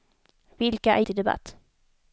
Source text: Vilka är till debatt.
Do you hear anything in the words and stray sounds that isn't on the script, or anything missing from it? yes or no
no